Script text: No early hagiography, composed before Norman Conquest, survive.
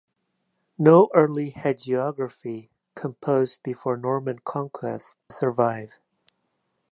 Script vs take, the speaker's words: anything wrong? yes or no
no